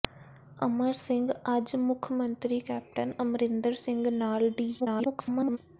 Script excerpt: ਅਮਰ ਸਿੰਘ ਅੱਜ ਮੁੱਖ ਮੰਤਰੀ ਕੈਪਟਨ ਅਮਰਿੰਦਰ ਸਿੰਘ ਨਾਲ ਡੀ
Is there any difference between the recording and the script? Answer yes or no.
yes